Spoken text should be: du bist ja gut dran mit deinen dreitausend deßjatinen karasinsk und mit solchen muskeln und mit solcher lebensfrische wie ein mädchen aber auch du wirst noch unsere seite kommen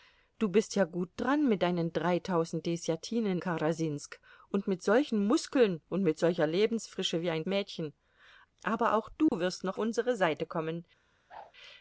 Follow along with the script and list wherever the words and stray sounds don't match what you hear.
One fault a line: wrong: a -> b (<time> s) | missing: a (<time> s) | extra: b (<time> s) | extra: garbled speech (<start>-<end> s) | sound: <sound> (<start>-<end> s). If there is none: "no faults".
sound: dropout (9.3-9.3 s)
sound: whoosh (11.3-11.5 s)